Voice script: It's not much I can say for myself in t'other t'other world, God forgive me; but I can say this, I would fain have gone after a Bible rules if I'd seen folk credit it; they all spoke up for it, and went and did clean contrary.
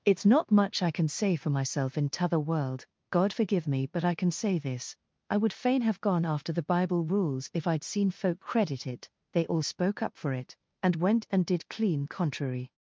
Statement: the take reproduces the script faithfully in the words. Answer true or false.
false